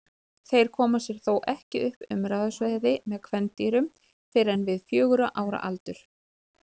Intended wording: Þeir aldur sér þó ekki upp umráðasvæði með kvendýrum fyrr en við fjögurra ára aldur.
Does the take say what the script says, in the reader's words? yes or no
no